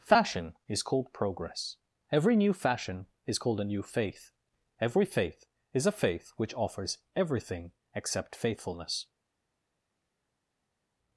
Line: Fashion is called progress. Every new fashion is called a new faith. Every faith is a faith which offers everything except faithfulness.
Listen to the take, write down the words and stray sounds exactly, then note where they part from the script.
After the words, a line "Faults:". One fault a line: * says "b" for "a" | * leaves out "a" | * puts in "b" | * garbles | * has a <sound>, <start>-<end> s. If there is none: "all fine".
Fashion is called progress. Every new fashion is called a new faith. Every faith is a faith which offers everything except faithfulness.
Faults:
all fine